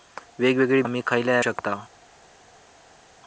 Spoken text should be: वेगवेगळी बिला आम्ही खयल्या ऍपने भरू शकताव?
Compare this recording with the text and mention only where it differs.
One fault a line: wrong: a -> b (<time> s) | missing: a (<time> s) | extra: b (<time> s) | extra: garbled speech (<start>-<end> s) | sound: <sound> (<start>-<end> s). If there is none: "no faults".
missing: बिला (0.8 s)
missing: ऍपने भरू (1.4 s)